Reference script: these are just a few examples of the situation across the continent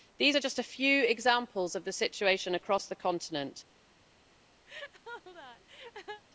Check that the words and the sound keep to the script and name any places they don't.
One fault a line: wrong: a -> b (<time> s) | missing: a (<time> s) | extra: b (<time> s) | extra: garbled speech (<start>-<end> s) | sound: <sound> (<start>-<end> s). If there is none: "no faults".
sound: laugh (4.7-6.2 s)